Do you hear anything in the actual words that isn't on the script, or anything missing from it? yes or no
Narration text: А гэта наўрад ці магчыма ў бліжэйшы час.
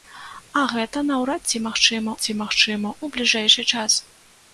yes